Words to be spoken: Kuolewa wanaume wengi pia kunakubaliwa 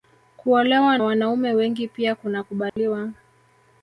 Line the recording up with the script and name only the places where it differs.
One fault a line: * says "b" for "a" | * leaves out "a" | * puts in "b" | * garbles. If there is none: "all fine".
all fine